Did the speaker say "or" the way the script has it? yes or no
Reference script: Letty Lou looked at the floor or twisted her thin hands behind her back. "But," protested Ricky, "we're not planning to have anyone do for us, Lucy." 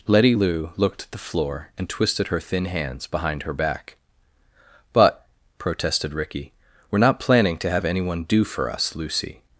no